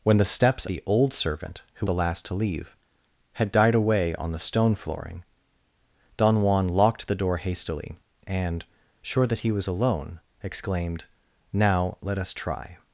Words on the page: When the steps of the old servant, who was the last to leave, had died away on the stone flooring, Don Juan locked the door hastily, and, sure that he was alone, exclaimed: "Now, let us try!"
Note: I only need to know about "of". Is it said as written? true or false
false